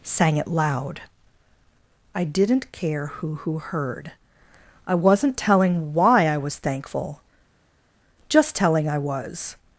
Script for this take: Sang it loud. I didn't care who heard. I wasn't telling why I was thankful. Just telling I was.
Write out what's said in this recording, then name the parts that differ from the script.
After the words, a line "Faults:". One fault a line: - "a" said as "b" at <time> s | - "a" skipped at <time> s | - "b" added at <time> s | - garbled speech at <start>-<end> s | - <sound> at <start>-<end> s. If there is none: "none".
Sang it loud. I didn't care who who heard. I wasn't telling why I was thankful. Just telling I was.
Faults:
- "who" added at 3.4 s